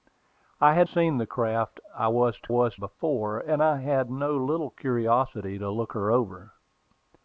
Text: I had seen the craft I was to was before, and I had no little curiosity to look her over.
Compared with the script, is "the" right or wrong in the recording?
right